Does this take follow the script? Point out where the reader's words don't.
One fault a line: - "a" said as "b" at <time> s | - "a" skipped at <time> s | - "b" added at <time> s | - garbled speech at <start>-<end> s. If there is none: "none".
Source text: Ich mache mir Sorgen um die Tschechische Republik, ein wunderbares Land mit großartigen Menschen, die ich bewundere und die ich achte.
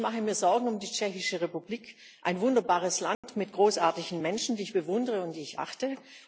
none